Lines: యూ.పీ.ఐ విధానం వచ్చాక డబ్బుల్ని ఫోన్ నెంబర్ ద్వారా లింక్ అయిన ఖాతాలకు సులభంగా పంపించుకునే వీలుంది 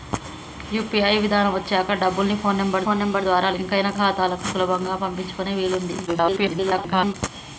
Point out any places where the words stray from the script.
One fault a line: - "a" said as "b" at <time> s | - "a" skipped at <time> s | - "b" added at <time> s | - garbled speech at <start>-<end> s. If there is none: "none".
- "ఫోన్ నెంబర్" added at 2.8 s
- garbled speech at 6.1-7.1 s